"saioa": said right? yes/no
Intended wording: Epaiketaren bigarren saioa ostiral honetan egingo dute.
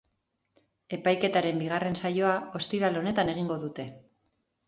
yes